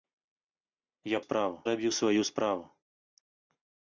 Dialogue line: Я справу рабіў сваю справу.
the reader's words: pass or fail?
pass